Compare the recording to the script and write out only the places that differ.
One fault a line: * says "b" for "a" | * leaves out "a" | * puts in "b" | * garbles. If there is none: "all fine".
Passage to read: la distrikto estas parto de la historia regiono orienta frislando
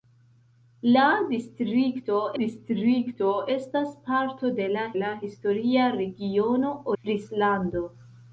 * puts in "distrikto"
* puts in "la"
* leaves out "orienta"